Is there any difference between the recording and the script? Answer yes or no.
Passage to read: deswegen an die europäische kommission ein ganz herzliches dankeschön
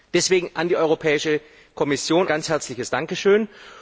yes